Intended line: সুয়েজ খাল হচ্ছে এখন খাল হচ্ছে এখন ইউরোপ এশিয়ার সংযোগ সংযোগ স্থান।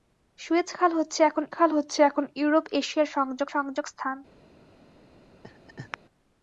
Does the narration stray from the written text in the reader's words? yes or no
no